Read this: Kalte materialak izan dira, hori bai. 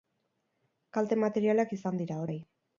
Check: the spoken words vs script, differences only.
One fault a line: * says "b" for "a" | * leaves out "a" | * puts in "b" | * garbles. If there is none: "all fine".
* leaves out "hori"